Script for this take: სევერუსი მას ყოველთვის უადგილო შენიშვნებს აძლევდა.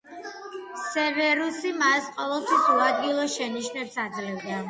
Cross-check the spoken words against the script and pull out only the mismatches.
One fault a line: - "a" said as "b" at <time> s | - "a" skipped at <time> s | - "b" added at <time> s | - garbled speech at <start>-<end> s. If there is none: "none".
none